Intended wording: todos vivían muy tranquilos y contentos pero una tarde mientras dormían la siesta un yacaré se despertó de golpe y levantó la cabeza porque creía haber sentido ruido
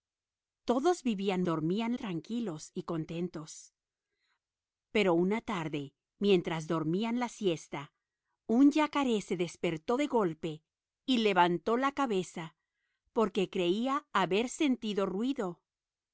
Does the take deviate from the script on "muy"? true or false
true